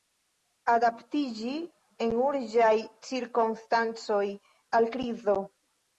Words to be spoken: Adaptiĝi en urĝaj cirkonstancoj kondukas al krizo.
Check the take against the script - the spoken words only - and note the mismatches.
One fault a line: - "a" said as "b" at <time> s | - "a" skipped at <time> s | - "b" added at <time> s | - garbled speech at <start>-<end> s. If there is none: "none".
- "kondukas" skipped at 4.2 s